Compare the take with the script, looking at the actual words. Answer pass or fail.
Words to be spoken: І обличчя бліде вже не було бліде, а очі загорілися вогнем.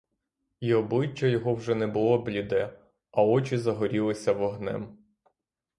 fail